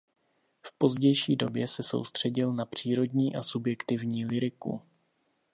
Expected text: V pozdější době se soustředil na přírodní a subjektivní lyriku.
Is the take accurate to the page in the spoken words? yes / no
yes